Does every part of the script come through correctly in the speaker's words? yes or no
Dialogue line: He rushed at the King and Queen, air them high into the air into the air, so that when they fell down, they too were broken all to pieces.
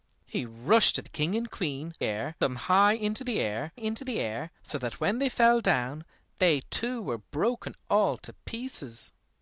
yes